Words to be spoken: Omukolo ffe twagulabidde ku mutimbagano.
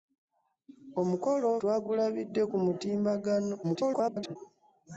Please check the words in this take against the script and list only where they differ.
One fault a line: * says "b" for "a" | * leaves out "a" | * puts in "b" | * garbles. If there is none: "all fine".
* leaves out "ffe"
* garbles